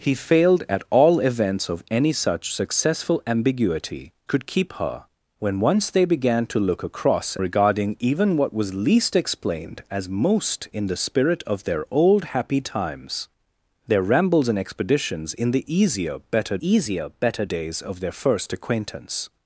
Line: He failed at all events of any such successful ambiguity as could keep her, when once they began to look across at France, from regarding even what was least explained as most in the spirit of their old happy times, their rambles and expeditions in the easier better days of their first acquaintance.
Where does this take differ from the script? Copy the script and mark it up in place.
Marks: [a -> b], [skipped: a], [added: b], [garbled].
He failed at all events of any such successful ambiguity [skipped: as] could keep her, when once they began to look across [skipped: at France, from] regarding even what was least explained as most in the spirit of their old happy times, their rambles and expeditions in the easier better [added: easier better] days of their first acquaintance.